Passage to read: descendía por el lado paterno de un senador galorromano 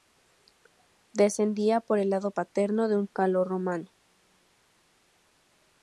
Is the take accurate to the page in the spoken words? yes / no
no